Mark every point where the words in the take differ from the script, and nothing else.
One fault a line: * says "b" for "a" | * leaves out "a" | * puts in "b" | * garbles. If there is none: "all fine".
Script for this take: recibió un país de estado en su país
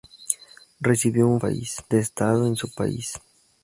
all fine